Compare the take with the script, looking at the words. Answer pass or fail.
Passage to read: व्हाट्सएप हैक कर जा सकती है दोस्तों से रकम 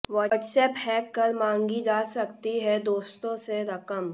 fail